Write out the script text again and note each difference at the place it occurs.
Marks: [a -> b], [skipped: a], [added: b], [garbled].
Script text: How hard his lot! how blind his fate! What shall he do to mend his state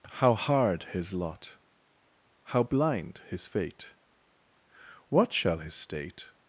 How hard his lot! how blind his fate! What shall [skipped: he do to mend] his state